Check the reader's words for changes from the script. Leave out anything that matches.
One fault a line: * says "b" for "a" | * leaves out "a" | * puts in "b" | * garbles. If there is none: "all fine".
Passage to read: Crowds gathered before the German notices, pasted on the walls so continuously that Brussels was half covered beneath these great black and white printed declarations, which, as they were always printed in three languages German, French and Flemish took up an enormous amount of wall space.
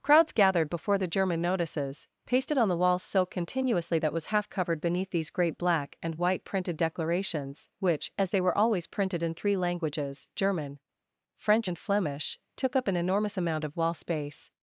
* leaves out "Brussels"